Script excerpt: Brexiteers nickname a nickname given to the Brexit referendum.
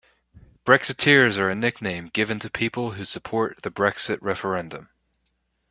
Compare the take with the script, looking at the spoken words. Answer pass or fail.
fail